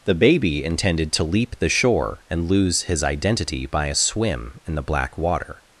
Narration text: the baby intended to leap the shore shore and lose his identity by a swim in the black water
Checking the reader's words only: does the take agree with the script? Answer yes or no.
no